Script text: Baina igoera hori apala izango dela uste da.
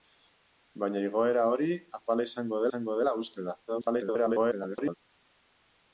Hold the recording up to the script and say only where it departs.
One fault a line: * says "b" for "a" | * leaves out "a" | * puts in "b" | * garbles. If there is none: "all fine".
* puts in "izango"
* garbles